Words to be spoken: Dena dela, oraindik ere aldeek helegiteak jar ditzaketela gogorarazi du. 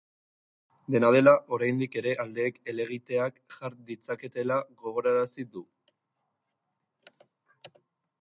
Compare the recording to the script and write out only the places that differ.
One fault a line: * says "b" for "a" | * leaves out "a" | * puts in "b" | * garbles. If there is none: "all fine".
all fine